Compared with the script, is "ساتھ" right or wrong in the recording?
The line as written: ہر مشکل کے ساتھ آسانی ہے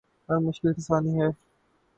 wrong